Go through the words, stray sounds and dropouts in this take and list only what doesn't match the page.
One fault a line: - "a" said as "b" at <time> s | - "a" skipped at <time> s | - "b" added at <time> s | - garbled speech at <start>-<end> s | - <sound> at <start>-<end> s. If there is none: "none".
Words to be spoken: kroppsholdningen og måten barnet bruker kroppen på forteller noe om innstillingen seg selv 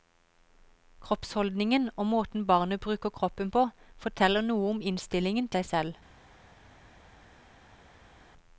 none